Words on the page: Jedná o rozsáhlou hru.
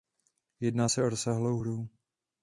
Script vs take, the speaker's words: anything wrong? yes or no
yes